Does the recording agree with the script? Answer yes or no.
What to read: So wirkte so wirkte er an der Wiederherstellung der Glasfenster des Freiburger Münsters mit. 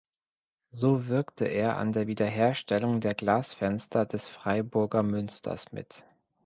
no